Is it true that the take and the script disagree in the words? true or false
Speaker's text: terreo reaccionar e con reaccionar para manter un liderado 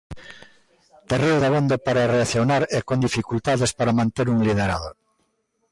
true